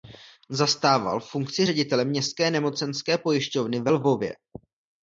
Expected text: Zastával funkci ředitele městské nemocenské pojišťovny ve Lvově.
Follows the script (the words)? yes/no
yes